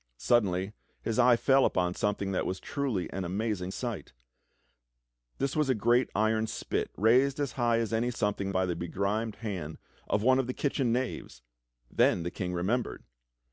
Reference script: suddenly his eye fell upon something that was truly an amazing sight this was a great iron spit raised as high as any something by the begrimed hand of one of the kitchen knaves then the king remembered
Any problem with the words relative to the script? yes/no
no